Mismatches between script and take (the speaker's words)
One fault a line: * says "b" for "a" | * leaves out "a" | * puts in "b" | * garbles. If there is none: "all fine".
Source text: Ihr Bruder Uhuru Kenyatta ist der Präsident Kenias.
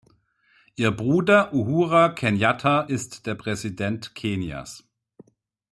all fine